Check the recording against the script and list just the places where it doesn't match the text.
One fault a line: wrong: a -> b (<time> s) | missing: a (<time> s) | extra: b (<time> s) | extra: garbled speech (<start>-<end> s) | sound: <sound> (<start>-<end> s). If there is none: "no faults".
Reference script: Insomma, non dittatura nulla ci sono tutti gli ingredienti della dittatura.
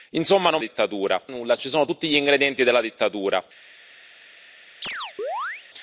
sound: chirp (4.8-5.6 s)